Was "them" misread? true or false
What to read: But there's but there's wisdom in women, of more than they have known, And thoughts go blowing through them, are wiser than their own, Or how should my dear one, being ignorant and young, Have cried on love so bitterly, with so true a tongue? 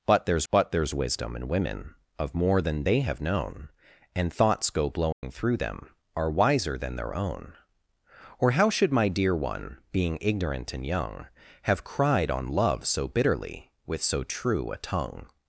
false